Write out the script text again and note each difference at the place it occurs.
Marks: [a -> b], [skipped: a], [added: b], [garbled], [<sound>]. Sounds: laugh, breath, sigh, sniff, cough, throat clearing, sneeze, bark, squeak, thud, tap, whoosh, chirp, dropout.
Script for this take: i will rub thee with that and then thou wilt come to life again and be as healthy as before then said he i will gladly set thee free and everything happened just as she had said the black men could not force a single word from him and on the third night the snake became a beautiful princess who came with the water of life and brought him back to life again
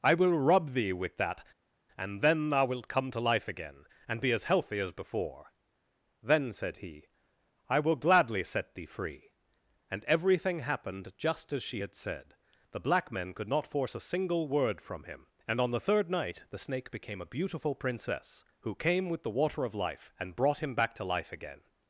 i will rub thee with that and then thou wilt come to life again and be as healthy as before then said he i will gladly set thee free and everything happened just as she had said the black men could not force a single word from him and on the third night the snake became a beautiful princess who came with the water of life and brought him back to life again